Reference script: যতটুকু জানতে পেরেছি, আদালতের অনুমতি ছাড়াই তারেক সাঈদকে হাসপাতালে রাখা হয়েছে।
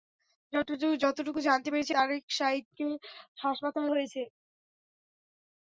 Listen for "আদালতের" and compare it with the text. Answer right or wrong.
wrong